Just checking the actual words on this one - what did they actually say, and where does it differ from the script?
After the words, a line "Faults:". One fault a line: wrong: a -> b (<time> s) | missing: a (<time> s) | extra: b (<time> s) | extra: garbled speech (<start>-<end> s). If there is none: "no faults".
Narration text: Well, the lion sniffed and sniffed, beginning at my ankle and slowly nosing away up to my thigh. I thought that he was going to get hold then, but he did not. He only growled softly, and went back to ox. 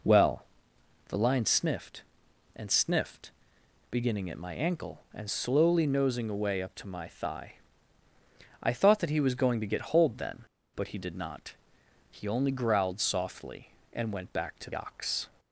Well, the lion sniffed and sniffed, beginning at my ankle and slowly nosing away up to my thigh. I thought that he was going to get hold then, but he did not. He only growled softly, and went back to ox.
Faults:
no faults